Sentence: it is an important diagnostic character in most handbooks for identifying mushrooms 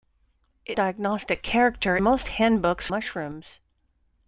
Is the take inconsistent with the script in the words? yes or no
yes